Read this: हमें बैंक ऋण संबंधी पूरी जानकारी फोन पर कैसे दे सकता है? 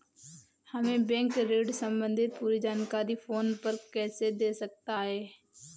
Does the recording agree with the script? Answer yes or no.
yes